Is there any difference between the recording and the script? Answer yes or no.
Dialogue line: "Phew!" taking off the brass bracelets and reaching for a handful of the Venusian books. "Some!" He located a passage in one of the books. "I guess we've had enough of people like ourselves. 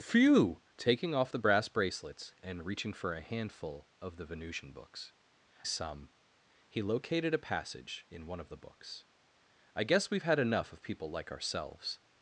no